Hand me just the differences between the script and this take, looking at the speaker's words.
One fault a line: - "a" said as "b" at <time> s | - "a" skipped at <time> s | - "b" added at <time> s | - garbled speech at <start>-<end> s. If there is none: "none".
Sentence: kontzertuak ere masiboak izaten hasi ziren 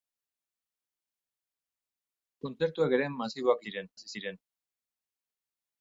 - "izaten" said as "ziren" at 3.6 s